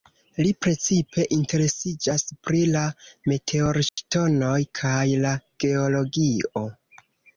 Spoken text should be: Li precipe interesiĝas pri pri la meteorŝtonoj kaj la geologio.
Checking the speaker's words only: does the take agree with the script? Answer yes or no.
no